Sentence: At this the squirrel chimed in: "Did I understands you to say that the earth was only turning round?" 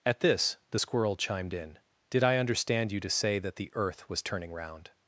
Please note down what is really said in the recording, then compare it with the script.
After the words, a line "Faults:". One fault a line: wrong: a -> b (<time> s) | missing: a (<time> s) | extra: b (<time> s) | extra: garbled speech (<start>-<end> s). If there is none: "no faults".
At this the squirrel chimed in: "Did I understand you to say that the earth was turning round?"
Faults:
wrong: understands -> understand (2.4 s)
missing: only (4.2 s)